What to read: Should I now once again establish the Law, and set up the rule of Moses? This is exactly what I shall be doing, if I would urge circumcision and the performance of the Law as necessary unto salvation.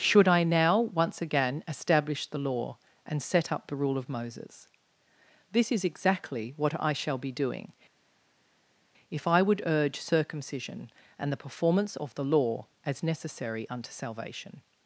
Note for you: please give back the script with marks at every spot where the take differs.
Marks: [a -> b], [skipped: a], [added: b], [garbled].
Should I now once again establish the Law, and set up the rule of Moses? This is exactly what I shall be doing, if I would urge circumcision and the performance of the Law as necessary unto salvation.